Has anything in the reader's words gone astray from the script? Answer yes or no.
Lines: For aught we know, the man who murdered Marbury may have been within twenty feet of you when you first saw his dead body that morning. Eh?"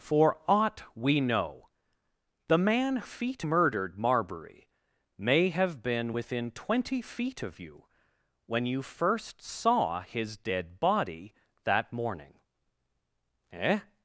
yes